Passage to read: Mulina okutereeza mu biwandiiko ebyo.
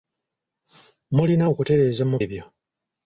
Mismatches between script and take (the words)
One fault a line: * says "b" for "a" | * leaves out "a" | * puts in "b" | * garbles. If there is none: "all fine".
* leaves out "biwandiiko"